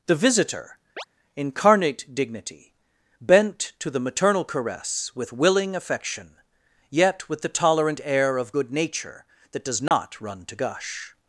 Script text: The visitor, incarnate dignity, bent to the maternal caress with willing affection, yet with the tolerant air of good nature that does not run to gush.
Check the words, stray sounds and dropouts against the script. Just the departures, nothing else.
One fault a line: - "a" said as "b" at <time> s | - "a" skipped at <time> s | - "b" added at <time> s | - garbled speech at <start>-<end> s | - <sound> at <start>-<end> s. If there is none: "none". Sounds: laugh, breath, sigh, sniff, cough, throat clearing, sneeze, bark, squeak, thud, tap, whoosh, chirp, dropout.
- chirp at 1.0-1.0 s
- dropout at 9.9-9.9 s